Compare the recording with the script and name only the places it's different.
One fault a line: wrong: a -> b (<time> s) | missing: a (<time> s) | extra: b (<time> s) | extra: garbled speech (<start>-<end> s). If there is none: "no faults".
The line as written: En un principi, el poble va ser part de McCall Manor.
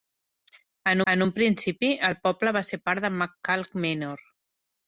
extra: en (1.1 s)